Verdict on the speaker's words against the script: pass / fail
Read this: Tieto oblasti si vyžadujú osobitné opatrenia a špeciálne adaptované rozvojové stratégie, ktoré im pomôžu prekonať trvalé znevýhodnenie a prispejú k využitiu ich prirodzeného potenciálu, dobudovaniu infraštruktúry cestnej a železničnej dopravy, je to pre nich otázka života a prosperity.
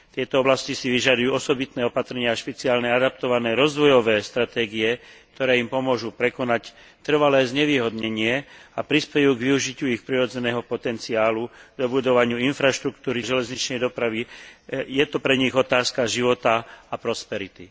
fail